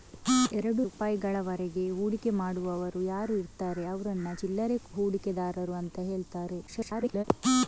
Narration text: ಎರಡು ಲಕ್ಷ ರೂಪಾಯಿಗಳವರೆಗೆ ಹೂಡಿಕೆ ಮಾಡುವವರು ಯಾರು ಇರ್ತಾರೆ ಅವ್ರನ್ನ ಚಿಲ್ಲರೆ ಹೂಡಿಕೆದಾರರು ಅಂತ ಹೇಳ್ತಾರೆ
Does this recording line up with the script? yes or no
no